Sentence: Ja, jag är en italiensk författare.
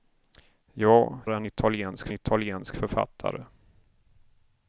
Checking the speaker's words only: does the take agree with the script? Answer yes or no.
no